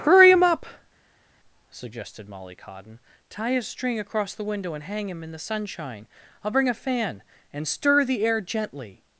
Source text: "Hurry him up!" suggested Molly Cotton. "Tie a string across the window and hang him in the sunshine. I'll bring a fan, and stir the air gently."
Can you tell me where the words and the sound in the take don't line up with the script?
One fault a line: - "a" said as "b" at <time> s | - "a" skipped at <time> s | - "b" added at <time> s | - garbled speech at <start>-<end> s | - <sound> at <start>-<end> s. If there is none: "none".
none